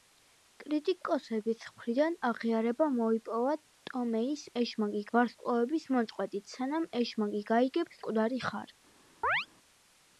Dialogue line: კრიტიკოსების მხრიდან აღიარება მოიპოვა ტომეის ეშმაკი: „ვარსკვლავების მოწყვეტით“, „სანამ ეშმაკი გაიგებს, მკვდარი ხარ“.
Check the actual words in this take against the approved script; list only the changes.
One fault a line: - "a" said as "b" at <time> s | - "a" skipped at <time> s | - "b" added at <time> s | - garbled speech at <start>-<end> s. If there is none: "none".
none